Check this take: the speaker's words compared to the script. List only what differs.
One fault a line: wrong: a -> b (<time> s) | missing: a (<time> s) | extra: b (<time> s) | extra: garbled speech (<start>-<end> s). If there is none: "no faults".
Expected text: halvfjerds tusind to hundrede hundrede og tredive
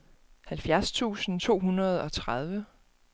missing: hundrede (2.0 s)